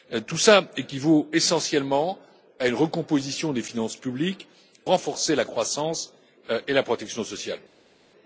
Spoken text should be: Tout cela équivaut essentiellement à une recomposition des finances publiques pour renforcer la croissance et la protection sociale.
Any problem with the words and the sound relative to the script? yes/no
yes